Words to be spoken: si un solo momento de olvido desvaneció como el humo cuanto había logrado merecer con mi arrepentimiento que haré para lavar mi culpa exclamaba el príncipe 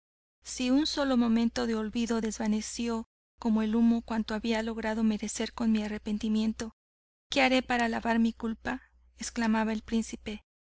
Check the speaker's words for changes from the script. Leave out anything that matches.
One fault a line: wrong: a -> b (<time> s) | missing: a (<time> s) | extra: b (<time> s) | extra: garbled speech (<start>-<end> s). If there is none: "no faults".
no faults